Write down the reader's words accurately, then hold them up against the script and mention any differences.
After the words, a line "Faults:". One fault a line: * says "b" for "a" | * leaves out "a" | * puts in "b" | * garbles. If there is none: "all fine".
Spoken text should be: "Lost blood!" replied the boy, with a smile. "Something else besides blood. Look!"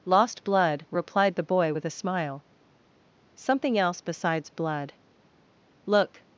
"Lost blood!" replied the boy, with a smile. "Something else besides blood. Look!"
Faults:
all fine